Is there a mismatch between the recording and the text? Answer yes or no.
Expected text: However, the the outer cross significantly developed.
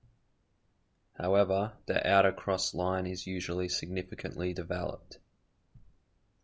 yes